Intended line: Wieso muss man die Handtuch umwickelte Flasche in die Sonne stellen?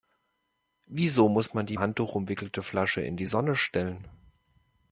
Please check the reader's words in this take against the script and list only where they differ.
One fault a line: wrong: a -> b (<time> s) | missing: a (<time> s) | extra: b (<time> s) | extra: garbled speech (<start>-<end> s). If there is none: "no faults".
no faults